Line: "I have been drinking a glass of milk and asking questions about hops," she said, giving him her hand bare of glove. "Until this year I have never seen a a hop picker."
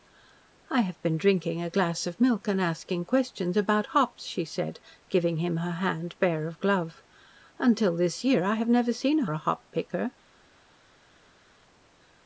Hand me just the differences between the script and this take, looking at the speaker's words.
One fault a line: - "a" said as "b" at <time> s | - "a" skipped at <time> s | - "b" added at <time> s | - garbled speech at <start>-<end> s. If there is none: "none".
none